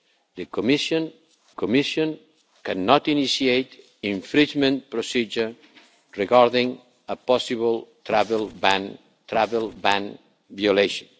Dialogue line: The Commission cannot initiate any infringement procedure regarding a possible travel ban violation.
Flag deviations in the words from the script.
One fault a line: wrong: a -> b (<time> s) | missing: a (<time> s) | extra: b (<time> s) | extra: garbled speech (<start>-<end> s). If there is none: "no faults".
extra: Commission (1.5 s)
missing: any (3.8 s)
extra: travel ban (9.3 s)